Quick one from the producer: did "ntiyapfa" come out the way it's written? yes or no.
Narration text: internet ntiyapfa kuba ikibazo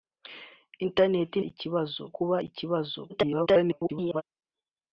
no